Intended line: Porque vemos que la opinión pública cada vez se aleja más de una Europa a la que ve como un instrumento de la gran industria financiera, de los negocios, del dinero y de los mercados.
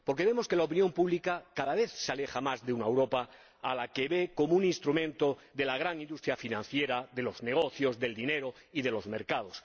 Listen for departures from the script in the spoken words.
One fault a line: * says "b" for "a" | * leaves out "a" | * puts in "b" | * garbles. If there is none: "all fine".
all fine